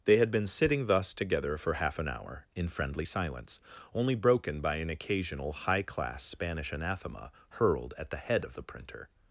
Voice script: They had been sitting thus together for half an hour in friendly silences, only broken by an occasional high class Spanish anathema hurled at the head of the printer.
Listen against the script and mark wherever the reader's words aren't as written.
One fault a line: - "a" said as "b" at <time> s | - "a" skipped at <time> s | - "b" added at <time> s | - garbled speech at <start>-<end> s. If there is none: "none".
- "silences" said as "silence" at 3.0 s